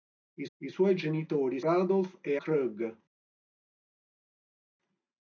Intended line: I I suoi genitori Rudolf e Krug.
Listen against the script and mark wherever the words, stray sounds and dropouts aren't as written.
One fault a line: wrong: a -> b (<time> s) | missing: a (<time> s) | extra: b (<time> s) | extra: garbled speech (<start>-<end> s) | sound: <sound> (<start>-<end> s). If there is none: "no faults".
no faults